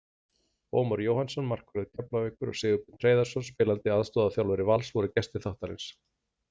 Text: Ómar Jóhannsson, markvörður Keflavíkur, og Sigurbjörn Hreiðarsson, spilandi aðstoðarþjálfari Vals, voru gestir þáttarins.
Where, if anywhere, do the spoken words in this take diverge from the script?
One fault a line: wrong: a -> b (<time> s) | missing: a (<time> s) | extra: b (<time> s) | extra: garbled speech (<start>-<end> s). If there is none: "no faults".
no faults